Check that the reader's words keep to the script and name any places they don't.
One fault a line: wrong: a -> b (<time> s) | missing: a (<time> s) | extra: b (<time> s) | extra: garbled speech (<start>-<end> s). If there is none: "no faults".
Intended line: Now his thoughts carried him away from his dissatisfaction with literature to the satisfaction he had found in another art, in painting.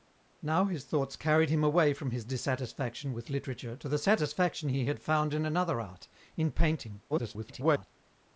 extra: garbled speech (7.1-7.9 s)